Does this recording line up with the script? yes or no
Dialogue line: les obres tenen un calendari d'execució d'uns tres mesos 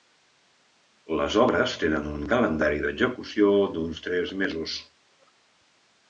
yes